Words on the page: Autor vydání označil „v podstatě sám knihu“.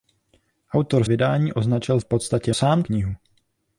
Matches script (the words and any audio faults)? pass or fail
pass